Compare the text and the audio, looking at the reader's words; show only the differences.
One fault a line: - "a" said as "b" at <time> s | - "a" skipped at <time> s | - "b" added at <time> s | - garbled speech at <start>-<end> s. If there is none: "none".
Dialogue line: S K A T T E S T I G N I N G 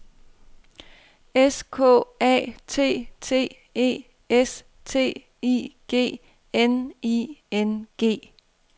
none